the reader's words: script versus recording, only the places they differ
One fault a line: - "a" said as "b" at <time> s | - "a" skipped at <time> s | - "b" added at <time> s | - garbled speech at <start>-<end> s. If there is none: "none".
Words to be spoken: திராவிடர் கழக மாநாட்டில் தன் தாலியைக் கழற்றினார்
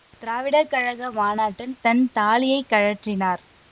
none